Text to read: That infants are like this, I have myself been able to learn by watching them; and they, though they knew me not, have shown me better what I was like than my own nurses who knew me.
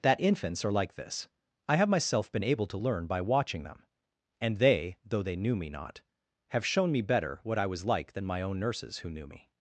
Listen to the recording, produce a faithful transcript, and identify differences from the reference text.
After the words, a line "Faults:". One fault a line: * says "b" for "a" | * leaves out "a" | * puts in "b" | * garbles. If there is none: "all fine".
That infants are like this, I have myself been able to learn by watching them; and they, though they knew me not, have shown me better what I was like than my own nurses who knew me.
Faults:
all fine